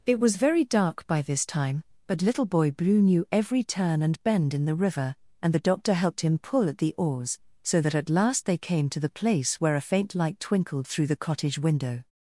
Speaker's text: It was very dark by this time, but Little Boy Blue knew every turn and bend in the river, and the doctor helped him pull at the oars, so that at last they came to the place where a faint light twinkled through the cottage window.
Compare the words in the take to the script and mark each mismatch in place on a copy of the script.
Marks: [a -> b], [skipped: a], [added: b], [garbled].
It was very dark by this time, but Little Boy Blue knew every turn and bend in the river, and the doctor helped him pull at the oars, so that at last they came to the place where a faint light twinkled through the cottage window.